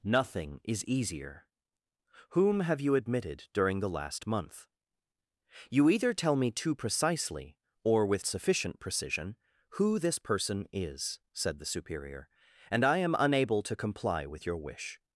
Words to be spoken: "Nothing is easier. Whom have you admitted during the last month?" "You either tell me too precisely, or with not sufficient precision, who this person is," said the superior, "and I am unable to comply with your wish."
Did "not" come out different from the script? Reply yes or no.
yes